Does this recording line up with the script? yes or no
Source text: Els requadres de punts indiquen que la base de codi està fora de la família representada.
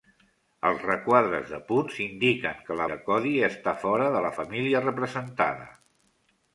no